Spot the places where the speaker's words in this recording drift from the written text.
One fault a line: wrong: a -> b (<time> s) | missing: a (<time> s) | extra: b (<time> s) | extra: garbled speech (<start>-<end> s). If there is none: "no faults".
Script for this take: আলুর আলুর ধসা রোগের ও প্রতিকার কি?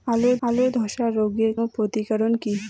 no faults